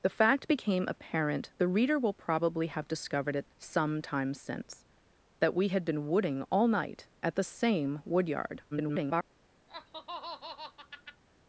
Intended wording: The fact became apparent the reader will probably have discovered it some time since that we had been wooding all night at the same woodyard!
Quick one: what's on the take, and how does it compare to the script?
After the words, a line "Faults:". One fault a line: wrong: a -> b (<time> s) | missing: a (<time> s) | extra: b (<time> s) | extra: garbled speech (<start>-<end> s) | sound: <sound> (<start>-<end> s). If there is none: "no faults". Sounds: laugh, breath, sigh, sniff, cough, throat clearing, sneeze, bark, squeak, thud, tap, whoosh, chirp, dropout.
The fact became apparent the reader will probably have discovered it some time since that we had been wooding all night at the same woodyard! [garbled]
Faults:
extra: garbled speech (8.7-9.2 s)
sound: laugh (9.7-11.2 s)